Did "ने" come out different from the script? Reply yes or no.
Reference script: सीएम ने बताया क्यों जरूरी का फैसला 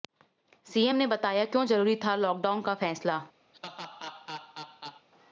no